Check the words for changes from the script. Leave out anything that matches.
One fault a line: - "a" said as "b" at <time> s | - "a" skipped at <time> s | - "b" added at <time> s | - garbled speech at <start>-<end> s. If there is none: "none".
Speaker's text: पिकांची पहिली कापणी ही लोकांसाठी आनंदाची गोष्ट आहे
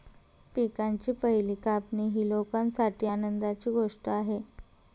none